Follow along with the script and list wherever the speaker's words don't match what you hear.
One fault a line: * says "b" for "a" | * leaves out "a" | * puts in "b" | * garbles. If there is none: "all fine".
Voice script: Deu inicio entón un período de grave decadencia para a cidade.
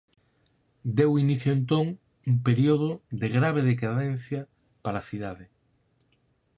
all fine